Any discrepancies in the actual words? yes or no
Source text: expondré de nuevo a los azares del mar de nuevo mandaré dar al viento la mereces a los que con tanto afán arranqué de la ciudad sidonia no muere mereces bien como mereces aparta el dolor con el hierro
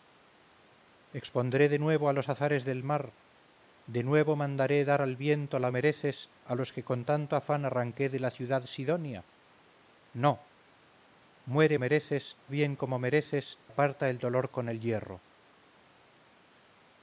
no